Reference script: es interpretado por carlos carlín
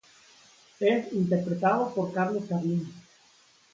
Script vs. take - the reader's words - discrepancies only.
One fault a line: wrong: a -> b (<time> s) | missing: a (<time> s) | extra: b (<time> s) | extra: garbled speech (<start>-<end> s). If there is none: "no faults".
no faults